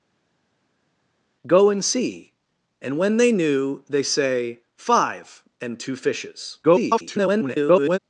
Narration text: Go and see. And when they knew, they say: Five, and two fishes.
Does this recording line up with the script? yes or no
no